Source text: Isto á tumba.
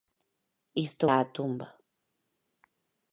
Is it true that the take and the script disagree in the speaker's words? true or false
false